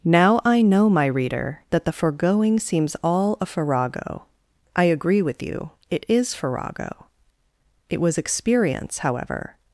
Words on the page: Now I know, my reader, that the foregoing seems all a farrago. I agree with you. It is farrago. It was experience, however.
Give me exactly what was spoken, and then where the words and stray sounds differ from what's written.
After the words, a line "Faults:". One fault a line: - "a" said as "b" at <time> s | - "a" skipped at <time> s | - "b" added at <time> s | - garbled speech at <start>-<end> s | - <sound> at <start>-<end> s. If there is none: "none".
Now I know, my reader, that the foregoing seems all a farrago. I agree with you. It is farrago. It was experience, however.
Faults:
none